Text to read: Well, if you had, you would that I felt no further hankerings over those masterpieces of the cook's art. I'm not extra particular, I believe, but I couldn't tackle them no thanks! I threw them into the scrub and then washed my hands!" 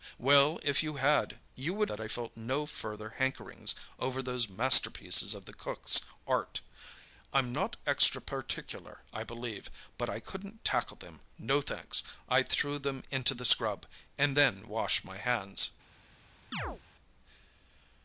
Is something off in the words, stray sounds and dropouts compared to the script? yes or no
yes